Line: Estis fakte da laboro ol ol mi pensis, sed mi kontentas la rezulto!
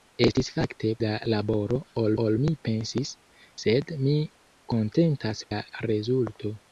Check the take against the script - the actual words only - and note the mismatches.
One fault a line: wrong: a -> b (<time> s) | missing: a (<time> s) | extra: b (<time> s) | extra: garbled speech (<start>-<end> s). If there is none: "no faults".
no faults